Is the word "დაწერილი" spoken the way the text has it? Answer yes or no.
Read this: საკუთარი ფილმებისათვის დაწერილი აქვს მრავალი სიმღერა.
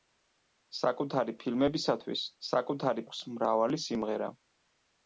no